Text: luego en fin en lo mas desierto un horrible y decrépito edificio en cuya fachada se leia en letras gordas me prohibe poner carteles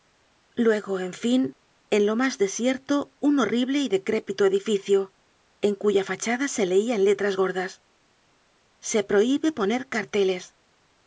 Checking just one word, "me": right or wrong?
wrong